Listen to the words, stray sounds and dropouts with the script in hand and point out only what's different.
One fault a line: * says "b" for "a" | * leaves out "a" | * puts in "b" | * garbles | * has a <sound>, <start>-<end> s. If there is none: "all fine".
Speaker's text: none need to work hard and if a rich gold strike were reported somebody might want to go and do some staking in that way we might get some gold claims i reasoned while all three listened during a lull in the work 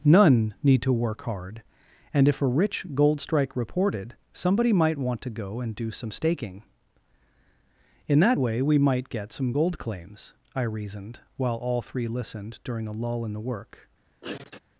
* leaves out "were"
* has a sneeze, 14.2-14.6 s